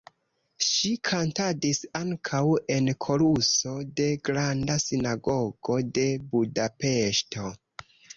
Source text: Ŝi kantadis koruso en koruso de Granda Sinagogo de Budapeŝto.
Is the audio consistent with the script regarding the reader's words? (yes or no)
no